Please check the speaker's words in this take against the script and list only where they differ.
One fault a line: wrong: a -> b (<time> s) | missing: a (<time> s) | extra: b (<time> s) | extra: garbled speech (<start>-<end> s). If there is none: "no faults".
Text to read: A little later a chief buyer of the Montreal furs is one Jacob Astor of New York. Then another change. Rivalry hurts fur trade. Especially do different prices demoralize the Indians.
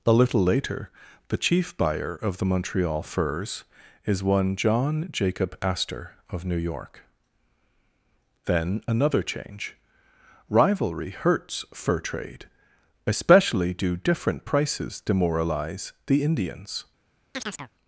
wrong: a -> the (1.3 s)
extra: John (4.5 s)